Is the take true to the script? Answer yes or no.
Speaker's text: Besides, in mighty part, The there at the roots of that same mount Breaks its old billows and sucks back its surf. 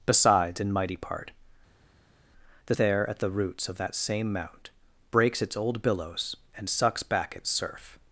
yes